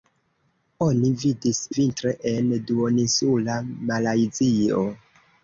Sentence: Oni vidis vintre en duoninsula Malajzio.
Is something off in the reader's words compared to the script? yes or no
no